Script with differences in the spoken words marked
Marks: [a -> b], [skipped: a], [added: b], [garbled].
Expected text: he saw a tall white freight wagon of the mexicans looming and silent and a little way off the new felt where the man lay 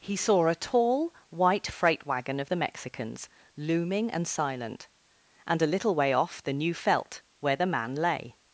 he saw a tall white freight wagon of the mexicans looming and silent and a little way off the new felt where the man lay